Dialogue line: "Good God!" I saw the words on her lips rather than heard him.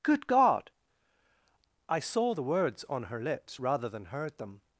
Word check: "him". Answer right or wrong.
wrong